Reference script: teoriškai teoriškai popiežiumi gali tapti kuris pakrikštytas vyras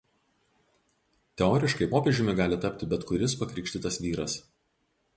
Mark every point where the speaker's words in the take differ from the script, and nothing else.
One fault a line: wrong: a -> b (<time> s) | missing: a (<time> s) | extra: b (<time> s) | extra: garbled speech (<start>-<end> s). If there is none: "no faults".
missing: teoriškai (1.9 s)
extra: bet (2.9 s)